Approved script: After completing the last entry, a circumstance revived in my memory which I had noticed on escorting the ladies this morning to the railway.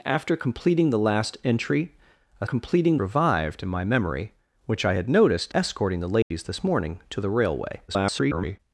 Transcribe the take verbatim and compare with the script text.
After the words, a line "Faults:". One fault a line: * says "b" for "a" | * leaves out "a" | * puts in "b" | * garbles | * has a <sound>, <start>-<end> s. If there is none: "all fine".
After completing the last entry, a completing revived in my memory which I had noticed escorting the ladies this morning to the railway. [garbled]
Faults:
* says "completing" for "circumstance"
* leaves out "on"
* has a dropout, 6.2-6.3 s
* garbles